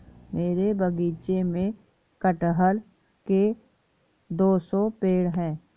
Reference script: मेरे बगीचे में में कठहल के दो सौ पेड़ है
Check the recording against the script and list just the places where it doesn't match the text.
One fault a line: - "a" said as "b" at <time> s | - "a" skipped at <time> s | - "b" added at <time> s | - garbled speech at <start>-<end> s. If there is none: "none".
- "में" skipped at 1.7 s